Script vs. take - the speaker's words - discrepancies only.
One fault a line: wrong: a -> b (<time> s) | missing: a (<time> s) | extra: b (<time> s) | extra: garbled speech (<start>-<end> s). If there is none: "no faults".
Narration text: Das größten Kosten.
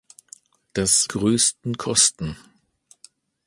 no faults